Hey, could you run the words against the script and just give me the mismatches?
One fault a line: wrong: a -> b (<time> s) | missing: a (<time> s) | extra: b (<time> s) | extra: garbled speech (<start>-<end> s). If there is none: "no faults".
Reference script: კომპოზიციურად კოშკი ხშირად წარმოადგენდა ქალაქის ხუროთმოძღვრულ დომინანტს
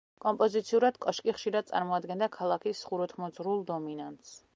no faults